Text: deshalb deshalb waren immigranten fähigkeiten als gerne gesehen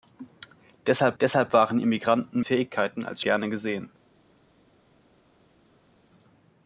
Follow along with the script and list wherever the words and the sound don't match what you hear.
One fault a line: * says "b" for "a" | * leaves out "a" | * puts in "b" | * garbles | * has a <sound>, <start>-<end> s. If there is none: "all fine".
all fine